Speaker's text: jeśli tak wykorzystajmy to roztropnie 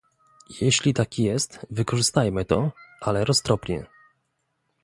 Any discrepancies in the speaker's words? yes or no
yes